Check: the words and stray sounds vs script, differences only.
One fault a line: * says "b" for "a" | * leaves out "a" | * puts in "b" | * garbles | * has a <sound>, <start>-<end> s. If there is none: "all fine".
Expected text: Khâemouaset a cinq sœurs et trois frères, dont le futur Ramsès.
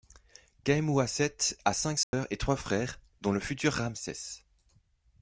* has a dropout, 2.0-2.1 s